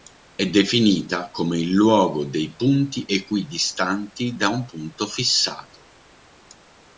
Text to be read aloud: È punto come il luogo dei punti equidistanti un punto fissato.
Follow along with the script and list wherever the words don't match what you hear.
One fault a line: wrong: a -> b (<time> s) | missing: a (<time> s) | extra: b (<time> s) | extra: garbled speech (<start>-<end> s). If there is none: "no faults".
wrong: punto -> definita (0.5 s)
extra: da (4.4 s)